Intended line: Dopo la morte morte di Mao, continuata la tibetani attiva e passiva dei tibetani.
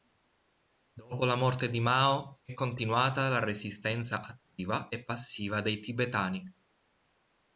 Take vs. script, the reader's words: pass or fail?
fail